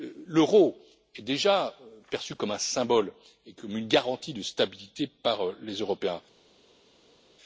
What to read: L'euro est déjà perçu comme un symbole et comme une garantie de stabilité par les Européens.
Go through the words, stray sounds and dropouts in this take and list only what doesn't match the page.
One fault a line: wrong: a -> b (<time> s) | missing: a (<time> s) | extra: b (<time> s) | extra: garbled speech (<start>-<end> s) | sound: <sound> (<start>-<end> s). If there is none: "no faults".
no faults